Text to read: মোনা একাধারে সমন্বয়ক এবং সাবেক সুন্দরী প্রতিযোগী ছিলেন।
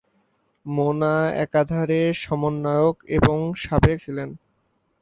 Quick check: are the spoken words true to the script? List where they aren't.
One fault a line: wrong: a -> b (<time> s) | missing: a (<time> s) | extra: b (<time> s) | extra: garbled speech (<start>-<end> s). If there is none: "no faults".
missing: সুন্দরী প্রতিযোগী (4.0 s)